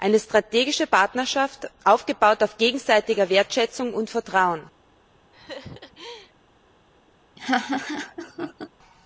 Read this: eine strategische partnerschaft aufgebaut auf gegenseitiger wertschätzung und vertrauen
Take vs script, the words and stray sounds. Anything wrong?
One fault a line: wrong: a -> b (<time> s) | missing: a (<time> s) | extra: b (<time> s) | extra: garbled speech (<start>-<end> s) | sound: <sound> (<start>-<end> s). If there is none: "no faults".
sound: laugh (5.3-6.3 s)
sound: laugh (7.4-8.7 s)